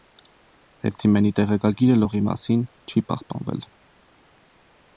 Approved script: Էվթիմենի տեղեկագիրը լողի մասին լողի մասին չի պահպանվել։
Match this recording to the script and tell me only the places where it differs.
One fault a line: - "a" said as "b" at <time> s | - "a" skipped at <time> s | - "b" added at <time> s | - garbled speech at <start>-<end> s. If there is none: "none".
- "լողի մասին" skipped at 2.6 s